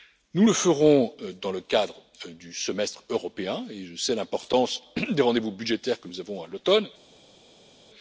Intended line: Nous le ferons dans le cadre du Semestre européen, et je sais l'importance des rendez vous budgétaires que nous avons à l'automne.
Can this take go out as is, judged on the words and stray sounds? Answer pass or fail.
pass